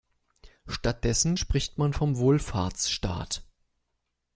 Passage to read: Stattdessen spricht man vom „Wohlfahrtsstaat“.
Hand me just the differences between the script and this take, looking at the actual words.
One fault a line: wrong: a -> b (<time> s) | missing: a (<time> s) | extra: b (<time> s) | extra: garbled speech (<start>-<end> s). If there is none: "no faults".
no faults